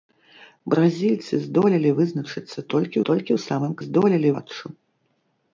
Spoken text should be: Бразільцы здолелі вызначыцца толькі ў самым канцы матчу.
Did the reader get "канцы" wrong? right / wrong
wrong